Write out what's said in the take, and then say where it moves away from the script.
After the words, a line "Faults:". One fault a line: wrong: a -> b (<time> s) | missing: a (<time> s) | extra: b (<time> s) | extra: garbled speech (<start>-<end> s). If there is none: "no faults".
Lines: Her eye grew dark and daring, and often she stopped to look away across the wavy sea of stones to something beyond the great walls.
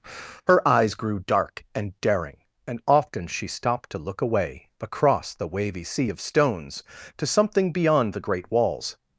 Her eyes grew dark and daring, and often she stopped to look away across the wavy sea of stones to something beyond the great walls.
Faults:
wrong: eye -> eyes (0.7 s)